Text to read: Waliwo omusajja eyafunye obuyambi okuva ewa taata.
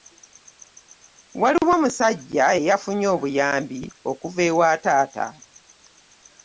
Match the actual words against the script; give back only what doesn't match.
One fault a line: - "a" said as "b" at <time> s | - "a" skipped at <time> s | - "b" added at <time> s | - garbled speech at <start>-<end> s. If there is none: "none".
none